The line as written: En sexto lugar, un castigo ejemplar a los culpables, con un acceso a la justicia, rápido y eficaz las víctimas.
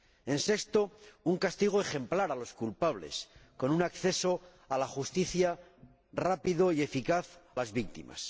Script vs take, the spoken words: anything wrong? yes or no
no